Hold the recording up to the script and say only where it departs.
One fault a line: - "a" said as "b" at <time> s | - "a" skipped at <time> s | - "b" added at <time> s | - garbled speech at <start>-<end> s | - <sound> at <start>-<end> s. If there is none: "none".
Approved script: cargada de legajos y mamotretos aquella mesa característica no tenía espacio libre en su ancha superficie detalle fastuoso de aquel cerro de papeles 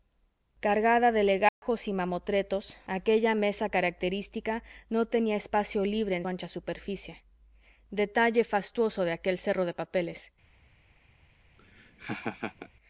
- dropout at 1.5-1.6 s
- "su" skipped at 6.2 s
- laugh at 11.6-12.7 s